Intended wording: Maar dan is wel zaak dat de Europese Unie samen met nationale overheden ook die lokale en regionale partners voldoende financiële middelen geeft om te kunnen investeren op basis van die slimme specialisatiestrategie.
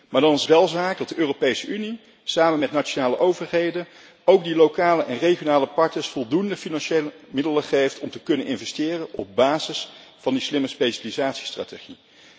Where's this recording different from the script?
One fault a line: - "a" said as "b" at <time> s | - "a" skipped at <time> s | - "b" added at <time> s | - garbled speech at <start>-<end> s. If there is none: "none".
none